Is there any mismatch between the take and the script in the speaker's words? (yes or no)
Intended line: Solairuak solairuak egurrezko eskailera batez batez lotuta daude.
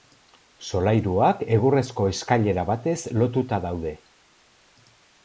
yes